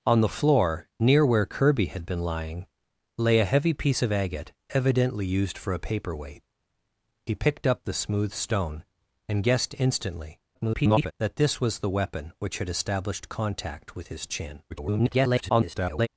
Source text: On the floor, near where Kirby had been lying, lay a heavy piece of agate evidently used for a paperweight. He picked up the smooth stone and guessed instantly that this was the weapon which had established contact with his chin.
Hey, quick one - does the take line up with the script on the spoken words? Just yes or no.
no